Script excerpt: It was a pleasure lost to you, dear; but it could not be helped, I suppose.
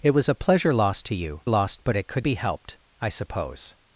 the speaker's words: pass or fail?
fail